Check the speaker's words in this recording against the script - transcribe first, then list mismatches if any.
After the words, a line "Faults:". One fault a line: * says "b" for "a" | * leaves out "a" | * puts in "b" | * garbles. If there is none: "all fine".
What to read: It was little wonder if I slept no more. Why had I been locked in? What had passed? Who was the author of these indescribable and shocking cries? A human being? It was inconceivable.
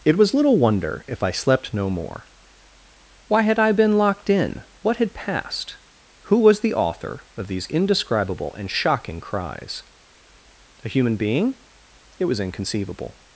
It was little wonder if I slept no more. Why had I been locked in? What had passed? Who was the author of these indescribable and shocking cries? A human being? It was inconceivable.
Faults:
all fine